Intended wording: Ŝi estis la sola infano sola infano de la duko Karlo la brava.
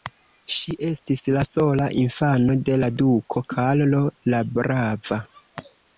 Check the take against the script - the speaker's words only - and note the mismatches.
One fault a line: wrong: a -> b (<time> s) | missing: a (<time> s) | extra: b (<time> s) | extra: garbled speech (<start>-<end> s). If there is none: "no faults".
missing: sola infano (2.5 s)